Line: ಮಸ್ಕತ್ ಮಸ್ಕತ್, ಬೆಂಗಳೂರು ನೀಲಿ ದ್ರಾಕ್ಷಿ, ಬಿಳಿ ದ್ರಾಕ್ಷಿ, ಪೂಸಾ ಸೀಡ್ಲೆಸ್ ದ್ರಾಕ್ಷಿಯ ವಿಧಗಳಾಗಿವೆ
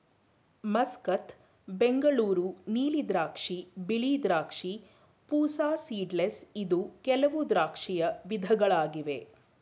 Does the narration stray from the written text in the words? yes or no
yes